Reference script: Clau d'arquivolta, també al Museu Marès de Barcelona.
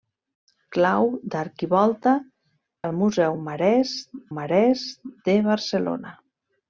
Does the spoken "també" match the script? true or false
false